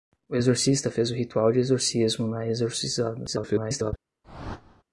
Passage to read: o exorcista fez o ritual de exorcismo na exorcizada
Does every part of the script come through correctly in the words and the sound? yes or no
no